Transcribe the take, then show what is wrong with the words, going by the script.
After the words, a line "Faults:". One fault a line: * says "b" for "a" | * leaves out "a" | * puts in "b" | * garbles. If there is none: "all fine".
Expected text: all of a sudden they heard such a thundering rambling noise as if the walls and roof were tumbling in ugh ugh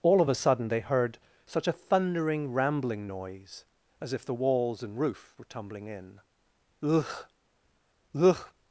all of a sudden they heard such a thundering rambling noise as if the walls and roof were tumbling in ugh ugh
Faults:
all fine